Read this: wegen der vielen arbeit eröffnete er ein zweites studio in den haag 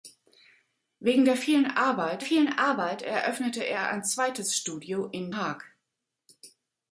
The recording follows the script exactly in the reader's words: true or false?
false